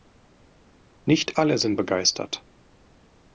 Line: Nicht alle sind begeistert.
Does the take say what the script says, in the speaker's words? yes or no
yes